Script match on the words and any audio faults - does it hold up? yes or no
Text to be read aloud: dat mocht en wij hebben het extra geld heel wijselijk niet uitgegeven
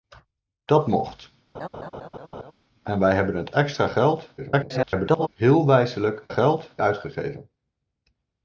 no